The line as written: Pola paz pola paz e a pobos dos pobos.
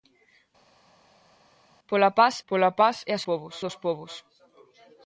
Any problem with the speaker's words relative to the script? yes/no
no